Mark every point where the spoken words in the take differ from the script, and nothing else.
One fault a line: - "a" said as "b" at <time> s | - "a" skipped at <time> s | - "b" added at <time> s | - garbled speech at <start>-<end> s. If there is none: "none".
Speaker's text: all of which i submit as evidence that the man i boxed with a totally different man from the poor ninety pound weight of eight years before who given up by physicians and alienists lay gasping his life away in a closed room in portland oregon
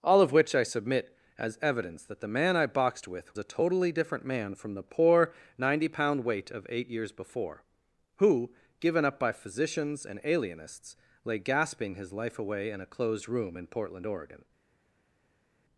none